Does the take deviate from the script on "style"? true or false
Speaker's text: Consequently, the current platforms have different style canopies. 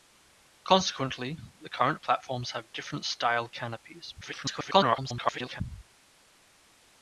false